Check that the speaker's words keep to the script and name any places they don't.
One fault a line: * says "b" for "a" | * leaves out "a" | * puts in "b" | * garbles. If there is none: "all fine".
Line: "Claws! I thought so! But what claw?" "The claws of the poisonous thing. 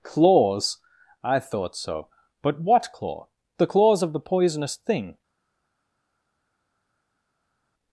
all fine